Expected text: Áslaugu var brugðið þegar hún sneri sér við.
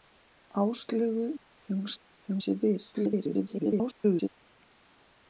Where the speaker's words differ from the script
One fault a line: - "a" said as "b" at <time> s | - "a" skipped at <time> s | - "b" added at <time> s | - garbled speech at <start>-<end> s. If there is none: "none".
- "var brugðið" skipped at 1.2 s
- "sneri" said as "þegar" at 2.0 s
- garbled speech at 2.9-4.3 s